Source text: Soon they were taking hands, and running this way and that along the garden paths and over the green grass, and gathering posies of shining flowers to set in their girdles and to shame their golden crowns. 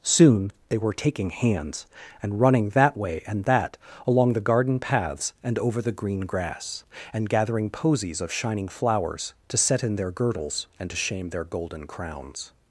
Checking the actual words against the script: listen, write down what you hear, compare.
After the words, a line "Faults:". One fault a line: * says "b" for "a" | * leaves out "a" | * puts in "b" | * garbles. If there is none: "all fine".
Soon they were taking hands, and running that way and that along the garden paths and over the green grass, and gathering posies of shining flowers to set in their girdles and to shame their golden crowns.
Faults:
* says "that" for "this"